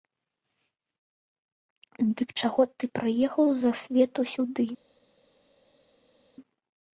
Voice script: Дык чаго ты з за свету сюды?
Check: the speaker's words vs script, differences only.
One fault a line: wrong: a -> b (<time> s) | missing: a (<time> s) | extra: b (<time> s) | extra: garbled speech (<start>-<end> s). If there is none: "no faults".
extra: прыехаў (3.0 s)